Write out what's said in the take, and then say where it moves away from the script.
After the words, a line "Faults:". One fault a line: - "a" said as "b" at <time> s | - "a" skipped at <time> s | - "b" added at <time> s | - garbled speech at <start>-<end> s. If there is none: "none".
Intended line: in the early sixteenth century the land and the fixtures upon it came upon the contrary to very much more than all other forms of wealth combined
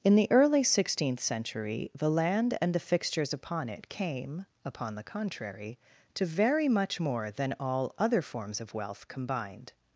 in the early sixteenth century the land and the fixtures upon it came upon the contrary to very much more than all other forms of wealth combined
Faults:
none